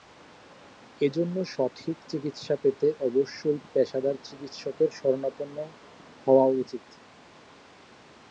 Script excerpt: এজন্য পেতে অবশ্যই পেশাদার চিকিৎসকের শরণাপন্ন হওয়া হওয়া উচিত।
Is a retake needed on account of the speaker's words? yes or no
yes